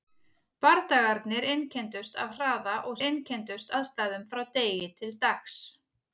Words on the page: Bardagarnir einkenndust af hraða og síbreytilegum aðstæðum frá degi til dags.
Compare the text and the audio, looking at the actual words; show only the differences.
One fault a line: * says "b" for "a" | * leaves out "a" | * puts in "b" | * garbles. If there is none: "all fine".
* says "einkenndust" for "síbreytilegum"